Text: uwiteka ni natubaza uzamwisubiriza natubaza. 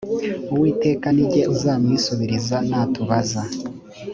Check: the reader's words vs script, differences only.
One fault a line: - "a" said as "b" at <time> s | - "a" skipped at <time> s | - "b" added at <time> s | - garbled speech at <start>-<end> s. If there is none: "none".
- "natubaza" said as "jye" at 1.3 s